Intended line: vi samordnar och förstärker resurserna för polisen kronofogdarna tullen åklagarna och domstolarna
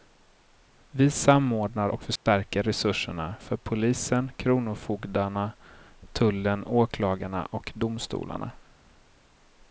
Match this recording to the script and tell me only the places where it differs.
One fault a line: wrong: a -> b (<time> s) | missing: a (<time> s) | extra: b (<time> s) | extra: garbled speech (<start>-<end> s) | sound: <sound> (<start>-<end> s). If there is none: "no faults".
sound: dropout (2.2-2.3 s)